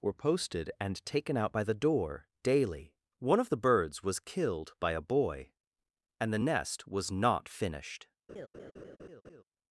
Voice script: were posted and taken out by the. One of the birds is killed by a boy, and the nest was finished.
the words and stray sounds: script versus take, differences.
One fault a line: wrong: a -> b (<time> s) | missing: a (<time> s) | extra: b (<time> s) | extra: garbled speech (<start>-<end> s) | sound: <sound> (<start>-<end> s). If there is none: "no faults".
extra: door daily (1.7 s)
wrong: is -> was (4.0 s)
extra: not (7.1 s)
sound: laugh (8.3-9.4 s)